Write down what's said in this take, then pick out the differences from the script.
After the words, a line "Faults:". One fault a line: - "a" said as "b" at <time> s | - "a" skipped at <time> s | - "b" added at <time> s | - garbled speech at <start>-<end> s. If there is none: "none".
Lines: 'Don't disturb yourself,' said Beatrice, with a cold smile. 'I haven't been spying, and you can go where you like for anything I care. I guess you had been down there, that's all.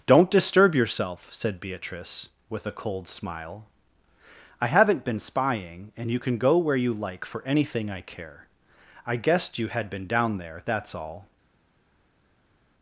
'Don't disturb yourself,' said Beatrice, with a cold smile. 'I haven't been spying, and you can go where you like for anything I care. I guessed you had been down there, that's all.
Faults:
- "guess" said as "guessed" at 9.2 s